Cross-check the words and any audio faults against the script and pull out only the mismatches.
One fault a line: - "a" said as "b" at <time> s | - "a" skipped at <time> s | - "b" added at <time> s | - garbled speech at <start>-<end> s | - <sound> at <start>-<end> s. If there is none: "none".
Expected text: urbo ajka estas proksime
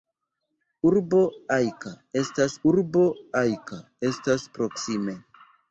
- "urbo ajka estas" added at 2.7 s